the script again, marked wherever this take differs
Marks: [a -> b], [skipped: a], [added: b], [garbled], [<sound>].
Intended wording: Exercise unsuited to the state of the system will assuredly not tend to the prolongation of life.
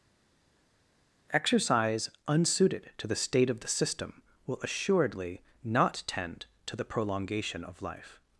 Exercise unsuited to the state of the system will assuredly not tend to the prolongation of life.